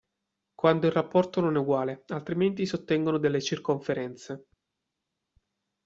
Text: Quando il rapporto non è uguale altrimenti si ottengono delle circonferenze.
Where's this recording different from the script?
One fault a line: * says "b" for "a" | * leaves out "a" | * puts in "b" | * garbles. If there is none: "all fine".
all fine